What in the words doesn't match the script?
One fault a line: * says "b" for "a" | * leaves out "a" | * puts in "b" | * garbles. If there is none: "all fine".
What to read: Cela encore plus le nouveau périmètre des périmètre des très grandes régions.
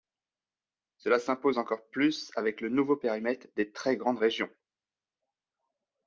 * puts in "s'impose"
* puts in "avec"
* leaves out "périmètre des"